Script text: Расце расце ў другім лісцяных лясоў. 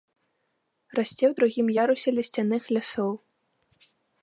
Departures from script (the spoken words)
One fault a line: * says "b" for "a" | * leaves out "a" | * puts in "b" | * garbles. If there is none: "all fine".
* leaves out "расце"
* puts in "ярусе"